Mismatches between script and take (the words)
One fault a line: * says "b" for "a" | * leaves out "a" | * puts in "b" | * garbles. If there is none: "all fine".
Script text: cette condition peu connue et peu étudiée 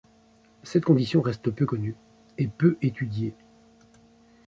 * puts in "reste"